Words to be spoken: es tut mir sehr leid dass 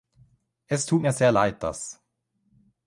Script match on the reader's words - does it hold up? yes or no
yes